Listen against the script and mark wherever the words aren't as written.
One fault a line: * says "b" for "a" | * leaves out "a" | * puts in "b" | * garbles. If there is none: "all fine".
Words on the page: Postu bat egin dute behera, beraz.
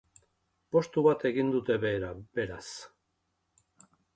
all fine